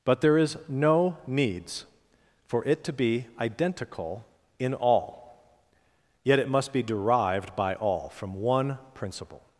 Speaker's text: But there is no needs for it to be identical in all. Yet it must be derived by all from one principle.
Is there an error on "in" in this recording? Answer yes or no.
no